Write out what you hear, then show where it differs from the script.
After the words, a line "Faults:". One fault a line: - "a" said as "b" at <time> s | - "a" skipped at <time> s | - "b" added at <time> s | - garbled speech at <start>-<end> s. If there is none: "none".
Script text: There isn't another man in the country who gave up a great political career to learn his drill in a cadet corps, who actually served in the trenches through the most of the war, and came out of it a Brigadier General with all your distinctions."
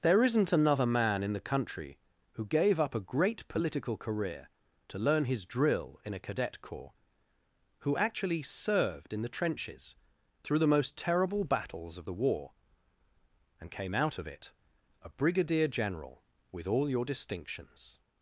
There isn't another man in the country who gave up a great political career to learn his drill in a cadet corps, who actually served in the trenches through the most terrible battles of the war, and came out of it a Brigadier General with all your distinctions."
Faults:
- "terrible battles" added at 11.0 s